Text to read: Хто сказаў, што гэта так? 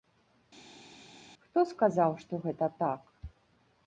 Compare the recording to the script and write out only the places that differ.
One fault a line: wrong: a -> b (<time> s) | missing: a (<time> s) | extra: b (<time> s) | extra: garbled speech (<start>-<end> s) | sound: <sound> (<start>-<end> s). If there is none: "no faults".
no faults